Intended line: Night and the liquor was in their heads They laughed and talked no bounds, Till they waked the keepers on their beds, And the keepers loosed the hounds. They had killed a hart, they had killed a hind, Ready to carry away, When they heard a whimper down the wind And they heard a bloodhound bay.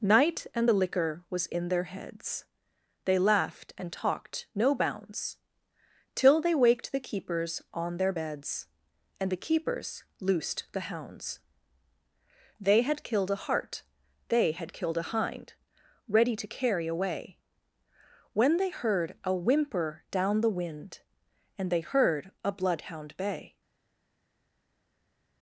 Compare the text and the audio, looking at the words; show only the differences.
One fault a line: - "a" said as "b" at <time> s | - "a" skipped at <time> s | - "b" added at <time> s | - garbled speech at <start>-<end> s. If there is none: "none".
none